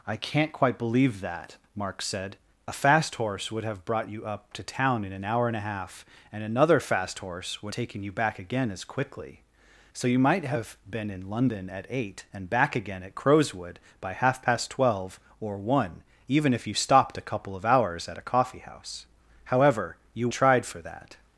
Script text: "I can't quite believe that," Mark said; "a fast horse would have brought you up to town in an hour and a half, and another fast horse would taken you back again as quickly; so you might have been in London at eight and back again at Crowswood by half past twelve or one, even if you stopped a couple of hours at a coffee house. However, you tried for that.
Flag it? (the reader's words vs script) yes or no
no